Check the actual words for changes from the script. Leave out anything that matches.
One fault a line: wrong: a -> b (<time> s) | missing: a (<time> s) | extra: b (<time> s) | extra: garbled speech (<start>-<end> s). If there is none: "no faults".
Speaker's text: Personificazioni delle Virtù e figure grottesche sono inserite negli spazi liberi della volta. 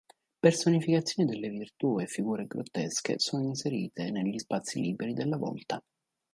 no faults